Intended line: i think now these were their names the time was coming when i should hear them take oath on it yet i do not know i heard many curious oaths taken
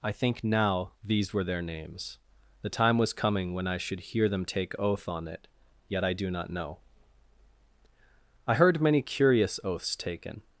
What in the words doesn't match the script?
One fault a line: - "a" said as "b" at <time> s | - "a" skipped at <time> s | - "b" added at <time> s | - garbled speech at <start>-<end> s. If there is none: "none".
none